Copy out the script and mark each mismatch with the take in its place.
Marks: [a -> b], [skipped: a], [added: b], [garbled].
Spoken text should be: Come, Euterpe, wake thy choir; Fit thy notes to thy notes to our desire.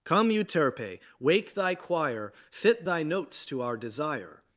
Come, Euterpe, wake thy choir; Fit thy notes to [skipped: thy notes to] our desire.